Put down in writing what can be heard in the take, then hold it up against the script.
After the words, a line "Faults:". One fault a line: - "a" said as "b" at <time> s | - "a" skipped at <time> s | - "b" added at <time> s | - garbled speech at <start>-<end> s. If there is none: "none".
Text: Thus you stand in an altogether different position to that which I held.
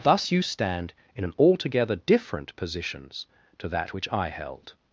Thus you stand in an altogether different positions to that which I held.
Faults:
- "position" said as "positions" at 2.6 s